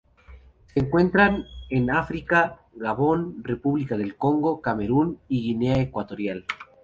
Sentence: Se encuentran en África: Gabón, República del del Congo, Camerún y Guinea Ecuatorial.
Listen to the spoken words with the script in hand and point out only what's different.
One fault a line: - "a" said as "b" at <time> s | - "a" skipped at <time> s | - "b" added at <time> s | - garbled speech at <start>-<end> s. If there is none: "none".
- "del" skipped at 4.2 s